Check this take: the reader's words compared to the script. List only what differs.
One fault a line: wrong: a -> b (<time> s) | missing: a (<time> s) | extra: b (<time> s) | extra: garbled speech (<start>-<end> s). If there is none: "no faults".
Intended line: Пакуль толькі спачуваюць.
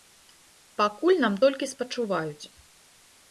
extra: нам (1.2 s)